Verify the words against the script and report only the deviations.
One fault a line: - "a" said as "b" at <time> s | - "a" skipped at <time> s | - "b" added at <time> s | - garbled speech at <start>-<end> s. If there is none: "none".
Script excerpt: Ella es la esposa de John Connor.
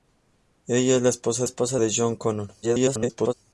- "esposa" added at 1.4 s
- garbled speech at 2.6-3.3 s